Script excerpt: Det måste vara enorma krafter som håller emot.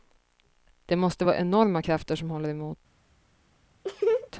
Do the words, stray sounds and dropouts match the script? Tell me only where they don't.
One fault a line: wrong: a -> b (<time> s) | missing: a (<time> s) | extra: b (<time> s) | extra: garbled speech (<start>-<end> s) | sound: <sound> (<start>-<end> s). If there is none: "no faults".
sound: laugh (3.8-4.3 s)